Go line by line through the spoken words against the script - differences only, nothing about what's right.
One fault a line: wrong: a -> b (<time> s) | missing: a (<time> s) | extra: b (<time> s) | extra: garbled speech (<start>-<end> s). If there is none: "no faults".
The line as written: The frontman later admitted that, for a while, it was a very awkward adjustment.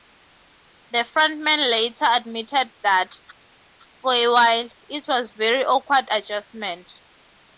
no faults